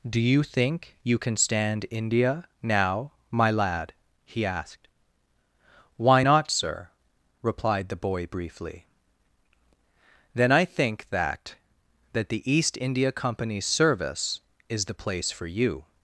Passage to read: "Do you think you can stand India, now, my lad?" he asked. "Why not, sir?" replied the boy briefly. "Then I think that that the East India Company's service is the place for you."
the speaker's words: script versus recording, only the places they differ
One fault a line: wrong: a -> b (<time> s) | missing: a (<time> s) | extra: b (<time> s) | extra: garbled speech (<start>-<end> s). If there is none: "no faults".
no faults